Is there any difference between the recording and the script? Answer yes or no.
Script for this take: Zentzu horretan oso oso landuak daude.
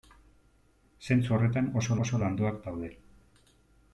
no